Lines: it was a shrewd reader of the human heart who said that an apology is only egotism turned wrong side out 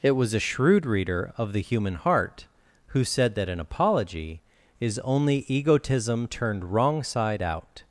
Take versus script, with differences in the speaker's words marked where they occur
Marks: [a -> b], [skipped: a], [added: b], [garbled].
it was a shrewd reader of the human heart who said that an apology is only egotism turned wrong side out